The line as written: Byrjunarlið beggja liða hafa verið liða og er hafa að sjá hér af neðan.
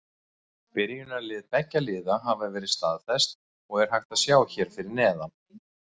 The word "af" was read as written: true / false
false